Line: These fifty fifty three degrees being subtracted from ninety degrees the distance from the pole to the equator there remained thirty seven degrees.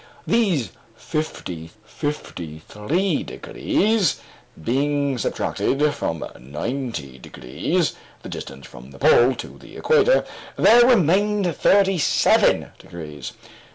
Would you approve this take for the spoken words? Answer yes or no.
yes